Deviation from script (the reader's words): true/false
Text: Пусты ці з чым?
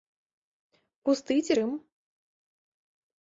true